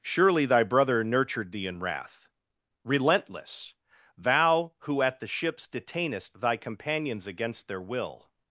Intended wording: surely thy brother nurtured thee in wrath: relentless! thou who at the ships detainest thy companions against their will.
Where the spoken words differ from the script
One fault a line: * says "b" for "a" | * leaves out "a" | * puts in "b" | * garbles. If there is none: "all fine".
all fine